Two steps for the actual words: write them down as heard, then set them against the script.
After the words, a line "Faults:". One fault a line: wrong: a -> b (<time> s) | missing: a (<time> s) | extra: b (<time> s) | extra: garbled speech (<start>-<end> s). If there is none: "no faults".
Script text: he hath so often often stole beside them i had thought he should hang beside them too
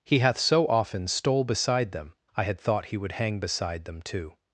he hath so often stole beside them i had thought he would hang beside them too
Faults:
missing: often (1.1 s)
wrong: should -> would (3.0 s)